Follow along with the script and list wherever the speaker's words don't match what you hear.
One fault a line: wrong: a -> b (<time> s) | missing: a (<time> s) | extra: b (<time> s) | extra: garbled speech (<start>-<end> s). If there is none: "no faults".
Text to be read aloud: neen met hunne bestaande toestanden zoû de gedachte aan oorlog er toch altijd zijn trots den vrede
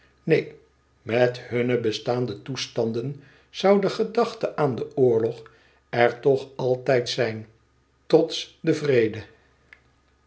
extra: den (4.8 s)